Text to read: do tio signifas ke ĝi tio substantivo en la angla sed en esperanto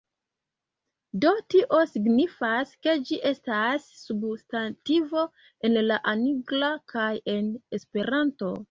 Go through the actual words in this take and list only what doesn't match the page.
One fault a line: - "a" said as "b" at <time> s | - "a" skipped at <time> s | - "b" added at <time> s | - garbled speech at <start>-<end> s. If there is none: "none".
- "tio" said as "estas" at 3.3 s
- "sed" said as "kaj" at 7.0 s